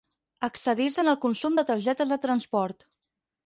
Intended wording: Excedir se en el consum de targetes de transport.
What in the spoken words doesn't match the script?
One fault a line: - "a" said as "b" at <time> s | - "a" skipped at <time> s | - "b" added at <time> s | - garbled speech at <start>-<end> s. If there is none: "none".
none